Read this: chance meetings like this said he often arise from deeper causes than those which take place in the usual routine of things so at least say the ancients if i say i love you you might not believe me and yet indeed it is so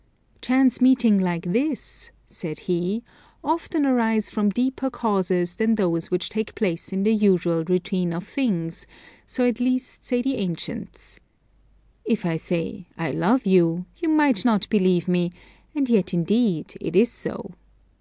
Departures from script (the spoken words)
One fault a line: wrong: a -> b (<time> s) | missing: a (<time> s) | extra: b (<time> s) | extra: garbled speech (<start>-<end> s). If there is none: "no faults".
no faults